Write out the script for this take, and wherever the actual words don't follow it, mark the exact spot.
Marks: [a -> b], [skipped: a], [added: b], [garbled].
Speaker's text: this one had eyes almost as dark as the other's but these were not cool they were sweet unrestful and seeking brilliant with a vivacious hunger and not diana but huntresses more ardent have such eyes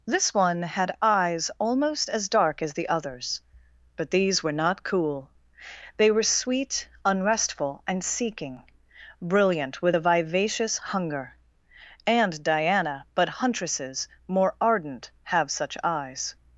this one had eyes almost as dark as the other's but these were not cool they were sweet unrestful and seeking brilliant with a vivacious hunger and [skipped: not] diana but huntresses more ardent have such eyes